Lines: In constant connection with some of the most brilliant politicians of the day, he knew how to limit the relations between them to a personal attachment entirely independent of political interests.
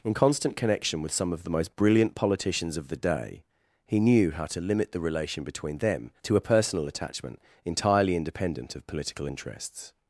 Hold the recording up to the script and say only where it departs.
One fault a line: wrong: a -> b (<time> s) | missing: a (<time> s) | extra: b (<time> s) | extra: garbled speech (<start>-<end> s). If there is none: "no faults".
wrong: relations -> relation (5.0 s)